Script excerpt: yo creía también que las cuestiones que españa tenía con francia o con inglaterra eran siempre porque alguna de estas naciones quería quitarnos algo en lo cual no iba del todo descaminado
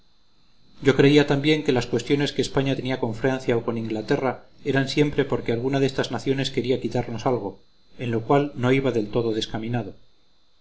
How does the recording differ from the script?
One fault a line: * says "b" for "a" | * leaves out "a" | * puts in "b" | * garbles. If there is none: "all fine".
all fine